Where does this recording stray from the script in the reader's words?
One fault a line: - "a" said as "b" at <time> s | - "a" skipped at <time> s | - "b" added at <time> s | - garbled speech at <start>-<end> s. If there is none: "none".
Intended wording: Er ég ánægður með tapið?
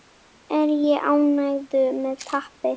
none